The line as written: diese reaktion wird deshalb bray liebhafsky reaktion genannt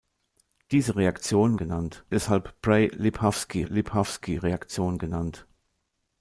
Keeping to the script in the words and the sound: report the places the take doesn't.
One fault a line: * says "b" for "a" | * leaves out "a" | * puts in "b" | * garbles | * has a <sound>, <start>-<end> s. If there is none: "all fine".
* says "genannt" for "wird"
* puts in "liebhafsky"